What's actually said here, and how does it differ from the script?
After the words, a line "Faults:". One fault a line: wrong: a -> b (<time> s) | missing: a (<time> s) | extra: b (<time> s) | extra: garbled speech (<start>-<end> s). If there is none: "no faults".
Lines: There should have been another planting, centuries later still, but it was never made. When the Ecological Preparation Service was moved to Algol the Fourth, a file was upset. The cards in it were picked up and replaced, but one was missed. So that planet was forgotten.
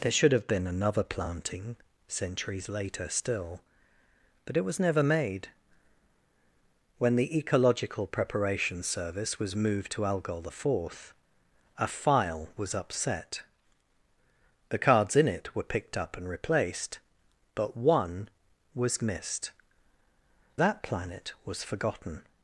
There should have been another planting, centuries later still, but it was never made. When the Ecological Preparation Service was moved to Algol the Fourth, a file was upset. The cards in it were picked up and replaced, but one was missed. That planet was forgotten.
Faults:
missing: So (19.5 s)